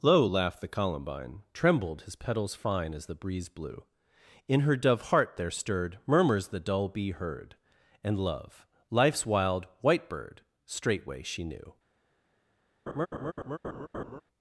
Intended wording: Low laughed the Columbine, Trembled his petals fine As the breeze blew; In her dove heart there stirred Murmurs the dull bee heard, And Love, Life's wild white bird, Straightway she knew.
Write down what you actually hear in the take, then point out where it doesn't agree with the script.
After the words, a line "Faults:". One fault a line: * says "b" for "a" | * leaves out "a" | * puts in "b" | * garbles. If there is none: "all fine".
Low laughed the Columbine, Trembled his petals fine As the breeze blew; In her dove heart there stirred Murmurs the dull bee heard, And Love, Life's wild white bird, Straightway she knew.
Faults:
all fine